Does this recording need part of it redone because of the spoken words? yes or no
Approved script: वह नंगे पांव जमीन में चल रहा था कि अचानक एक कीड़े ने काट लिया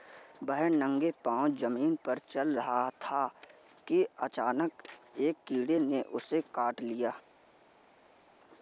yes